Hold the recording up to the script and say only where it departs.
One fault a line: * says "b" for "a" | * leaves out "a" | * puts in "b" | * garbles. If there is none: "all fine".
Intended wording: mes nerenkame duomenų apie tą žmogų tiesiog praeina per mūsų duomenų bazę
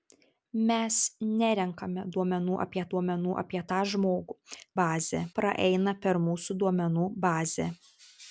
* puts in "duomenų apie"
* says "bazę" for "tiesiog"